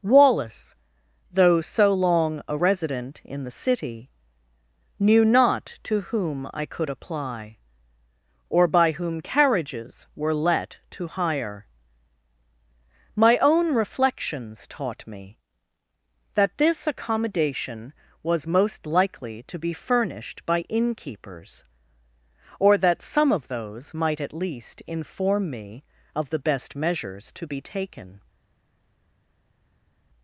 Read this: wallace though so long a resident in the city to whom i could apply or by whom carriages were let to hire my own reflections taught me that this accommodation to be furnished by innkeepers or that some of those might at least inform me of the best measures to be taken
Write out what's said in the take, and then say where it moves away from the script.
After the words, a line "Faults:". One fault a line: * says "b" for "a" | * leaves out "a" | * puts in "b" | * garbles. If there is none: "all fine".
wallace though so long a resident in the city knew not to whom i could apply or by whom carriages were let to hire my own reflections taught me that this accommodation was most likely to be furnished by innkeepers or that some of those might at least inform me of the best measures to be taken
Faults:
* puts in "knew not"
* puts in "was most likely"